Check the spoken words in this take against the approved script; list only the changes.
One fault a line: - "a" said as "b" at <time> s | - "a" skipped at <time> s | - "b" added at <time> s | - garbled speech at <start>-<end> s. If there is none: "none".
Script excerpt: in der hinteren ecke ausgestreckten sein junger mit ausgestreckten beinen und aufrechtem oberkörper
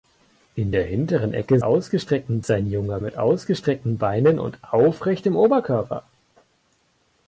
none